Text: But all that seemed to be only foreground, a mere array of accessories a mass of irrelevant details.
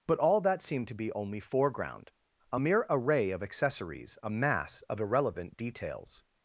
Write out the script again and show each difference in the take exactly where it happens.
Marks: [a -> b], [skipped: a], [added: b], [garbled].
But all that seemed to be only foreground, a mere array of accessories a mass of irrelevant details.